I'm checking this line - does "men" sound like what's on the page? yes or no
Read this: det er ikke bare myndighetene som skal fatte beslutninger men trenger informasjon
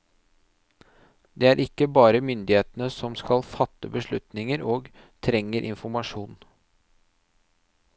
no